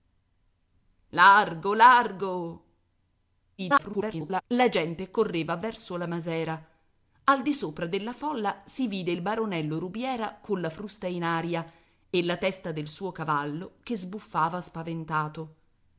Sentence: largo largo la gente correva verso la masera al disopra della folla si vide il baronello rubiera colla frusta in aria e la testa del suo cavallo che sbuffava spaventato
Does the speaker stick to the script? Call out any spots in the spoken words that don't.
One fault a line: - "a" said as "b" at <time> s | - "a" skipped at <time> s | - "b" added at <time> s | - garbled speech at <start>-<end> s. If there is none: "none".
- garbled speech at 3.6-4.4 s